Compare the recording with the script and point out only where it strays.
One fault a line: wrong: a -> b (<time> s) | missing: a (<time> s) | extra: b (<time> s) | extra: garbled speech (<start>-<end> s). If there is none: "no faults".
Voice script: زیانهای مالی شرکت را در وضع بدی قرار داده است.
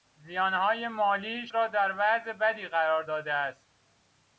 missing: شرکت (1.5 s)